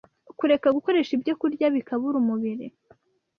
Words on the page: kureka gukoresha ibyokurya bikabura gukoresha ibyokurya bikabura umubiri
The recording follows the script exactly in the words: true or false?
false